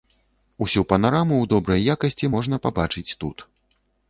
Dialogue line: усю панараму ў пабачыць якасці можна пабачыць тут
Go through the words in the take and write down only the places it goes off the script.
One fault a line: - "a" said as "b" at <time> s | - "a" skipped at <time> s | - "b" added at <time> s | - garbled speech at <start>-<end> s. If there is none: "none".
- "пабачыць" said as "добрай" at 1.5 s